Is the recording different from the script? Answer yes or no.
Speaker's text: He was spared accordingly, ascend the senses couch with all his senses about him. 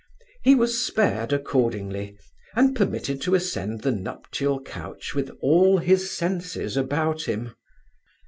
yes